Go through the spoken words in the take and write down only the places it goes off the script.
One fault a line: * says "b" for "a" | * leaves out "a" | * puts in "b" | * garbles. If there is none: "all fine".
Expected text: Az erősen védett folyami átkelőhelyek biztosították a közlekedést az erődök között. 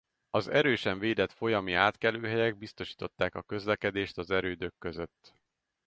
all fine